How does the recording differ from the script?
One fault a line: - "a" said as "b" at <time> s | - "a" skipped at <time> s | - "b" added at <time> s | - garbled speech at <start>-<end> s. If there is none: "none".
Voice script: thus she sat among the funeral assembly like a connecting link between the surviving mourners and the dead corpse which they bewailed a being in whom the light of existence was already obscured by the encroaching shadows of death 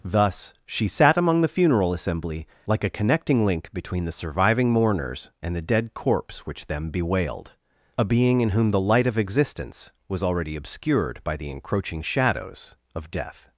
- "they" said as "them" at 6.7 s